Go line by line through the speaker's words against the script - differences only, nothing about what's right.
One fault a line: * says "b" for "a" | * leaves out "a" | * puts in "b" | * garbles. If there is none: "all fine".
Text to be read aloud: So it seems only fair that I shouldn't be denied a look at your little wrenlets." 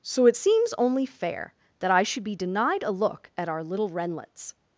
* says "should" for "shouldn't"
* says "our" for "your"